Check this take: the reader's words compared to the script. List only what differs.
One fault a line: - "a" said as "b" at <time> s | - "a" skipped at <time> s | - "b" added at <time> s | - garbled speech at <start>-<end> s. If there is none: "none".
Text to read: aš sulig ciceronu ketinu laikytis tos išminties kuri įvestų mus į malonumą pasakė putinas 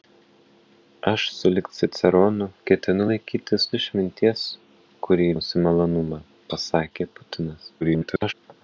- "tos" skipped at 3.7 s
- "įvestų" skipped at 5.3 s
- garbled speech at 7.8-8.3 s